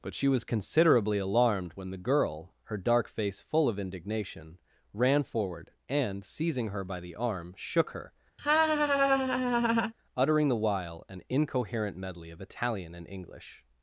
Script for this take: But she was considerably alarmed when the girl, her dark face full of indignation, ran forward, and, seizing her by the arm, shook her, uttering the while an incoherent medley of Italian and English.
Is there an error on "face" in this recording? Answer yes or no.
no